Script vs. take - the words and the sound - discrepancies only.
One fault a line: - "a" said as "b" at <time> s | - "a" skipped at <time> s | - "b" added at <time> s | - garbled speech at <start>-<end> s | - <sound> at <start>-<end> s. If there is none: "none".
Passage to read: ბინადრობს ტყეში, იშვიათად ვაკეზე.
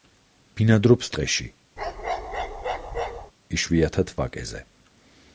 - bark at 1.8-3.3 s